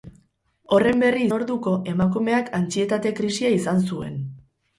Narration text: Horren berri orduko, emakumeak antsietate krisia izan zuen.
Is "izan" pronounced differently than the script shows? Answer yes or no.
no